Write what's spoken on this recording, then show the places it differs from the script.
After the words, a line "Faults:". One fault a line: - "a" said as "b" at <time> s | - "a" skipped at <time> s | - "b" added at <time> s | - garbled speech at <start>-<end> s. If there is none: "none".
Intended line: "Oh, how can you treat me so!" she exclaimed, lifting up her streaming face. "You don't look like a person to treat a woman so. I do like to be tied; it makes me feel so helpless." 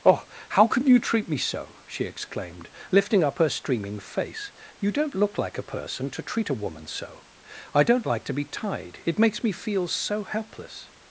"Oh, how can you treat me so!" she exclaimed, lifting up her streaming face. "You don't look like a person to treat a woman so. I don't like to be tied; it makes me feel so helpless."
Faults:
- "do" said as "don't" at 7.8 s